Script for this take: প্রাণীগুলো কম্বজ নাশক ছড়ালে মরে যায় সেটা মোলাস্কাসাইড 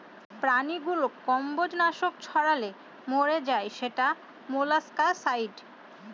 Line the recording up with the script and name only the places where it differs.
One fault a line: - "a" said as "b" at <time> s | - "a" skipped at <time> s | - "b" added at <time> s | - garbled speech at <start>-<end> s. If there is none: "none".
none